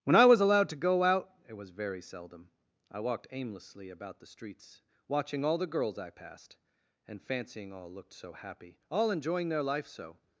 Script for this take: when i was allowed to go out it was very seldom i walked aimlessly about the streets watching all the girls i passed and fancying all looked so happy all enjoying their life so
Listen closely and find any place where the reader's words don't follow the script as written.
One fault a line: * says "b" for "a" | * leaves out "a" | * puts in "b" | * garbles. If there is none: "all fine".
all fine